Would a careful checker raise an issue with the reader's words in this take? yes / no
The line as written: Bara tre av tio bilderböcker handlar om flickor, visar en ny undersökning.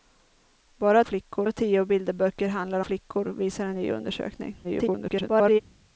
yes